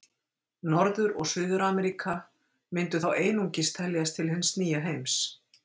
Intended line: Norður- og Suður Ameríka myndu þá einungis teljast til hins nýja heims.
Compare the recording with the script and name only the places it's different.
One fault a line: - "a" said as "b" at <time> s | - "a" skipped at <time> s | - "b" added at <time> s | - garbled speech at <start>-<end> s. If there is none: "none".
none